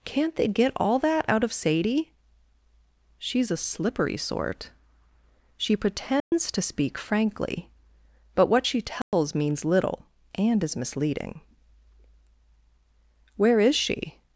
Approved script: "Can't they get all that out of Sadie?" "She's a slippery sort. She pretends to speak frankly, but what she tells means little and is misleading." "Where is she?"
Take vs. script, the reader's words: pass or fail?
pass